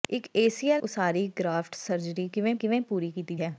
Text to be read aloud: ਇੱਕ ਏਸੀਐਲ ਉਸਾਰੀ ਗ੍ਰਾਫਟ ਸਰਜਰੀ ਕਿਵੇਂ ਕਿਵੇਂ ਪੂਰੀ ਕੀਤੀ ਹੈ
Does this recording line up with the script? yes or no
yes